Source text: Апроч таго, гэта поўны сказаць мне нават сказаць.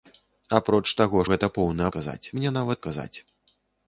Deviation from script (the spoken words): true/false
false